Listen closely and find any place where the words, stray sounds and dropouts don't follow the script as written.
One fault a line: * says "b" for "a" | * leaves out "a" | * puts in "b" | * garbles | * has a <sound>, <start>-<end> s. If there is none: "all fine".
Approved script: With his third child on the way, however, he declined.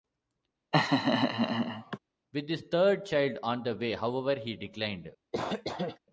* has a laugh, 0.7-2.0 s
* has a cough, 5.3-6.0 s